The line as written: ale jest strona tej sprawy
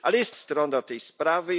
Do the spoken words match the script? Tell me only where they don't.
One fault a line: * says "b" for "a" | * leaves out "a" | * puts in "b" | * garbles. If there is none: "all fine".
all fine